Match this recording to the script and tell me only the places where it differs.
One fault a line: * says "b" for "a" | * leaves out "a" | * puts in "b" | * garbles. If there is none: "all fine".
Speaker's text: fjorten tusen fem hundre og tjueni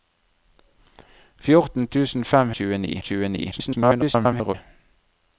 * says "tjueni" for "hundre"
* garbles